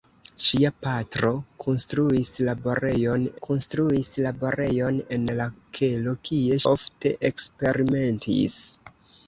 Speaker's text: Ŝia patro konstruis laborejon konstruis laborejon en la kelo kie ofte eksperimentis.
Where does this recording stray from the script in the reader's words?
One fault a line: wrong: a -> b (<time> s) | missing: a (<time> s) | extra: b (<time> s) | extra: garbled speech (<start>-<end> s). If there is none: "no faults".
no faults